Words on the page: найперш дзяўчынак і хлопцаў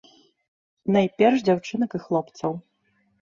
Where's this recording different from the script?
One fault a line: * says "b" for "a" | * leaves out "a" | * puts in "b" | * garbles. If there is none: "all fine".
all fine